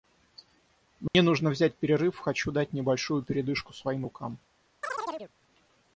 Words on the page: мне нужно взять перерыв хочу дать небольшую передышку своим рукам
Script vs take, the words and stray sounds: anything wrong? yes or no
yes